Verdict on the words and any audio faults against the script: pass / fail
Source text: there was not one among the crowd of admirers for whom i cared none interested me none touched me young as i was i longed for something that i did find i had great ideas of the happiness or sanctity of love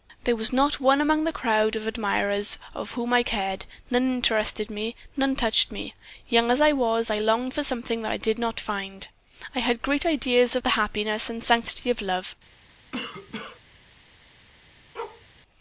fail